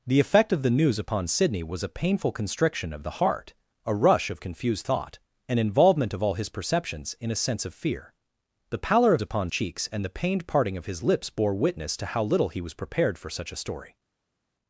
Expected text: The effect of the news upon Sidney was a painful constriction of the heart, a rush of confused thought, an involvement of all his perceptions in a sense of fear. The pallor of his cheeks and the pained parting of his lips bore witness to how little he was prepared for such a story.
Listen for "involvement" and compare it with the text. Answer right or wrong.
right